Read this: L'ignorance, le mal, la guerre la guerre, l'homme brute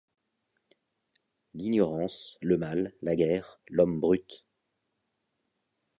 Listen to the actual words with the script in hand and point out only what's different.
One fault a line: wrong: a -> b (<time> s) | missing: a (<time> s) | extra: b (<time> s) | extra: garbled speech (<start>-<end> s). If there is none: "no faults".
missing: la guerre (3.6 s)